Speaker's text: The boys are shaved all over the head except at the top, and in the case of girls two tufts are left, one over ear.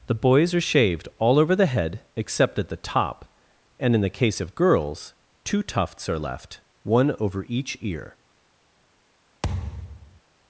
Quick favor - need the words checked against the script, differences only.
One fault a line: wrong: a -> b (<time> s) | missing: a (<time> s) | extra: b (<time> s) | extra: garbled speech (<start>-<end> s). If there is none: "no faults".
extra: each (7.5 s)